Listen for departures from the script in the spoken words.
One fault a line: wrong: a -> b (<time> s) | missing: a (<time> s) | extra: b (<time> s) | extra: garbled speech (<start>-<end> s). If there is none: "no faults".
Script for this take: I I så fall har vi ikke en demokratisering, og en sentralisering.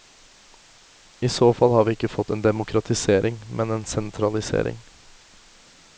missing: I (1.3 s)
extra: fått (2.1 s)
wrong: og -> men (3.5 s)